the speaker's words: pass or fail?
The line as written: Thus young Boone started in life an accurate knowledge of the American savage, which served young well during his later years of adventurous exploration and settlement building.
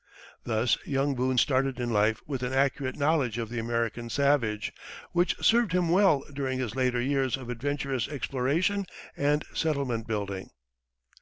fail